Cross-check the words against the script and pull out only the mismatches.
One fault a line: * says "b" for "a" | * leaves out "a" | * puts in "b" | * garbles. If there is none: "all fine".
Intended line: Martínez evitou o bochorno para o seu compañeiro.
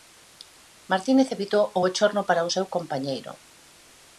all fine